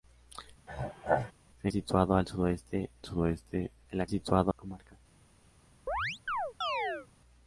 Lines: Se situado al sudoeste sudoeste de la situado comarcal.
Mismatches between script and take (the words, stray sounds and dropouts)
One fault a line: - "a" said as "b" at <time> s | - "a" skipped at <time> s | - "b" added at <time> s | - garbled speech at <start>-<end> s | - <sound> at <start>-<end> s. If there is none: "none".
- throat clearing at 0.7-1.3 s
- chirp at 5.9-7.1 s